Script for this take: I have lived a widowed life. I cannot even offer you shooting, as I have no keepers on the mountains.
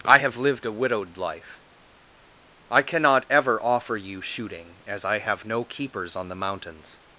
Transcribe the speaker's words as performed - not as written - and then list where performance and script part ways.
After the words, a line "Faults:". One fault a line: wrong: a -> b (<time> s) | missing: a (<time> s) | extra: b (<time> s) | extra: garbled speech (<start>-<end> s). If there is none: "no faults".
I have lived a widowed life. I cannot ever offer you shooting, as I have no keepers on the mountains.
Faults:
wrong: even -> ever (3.3 s)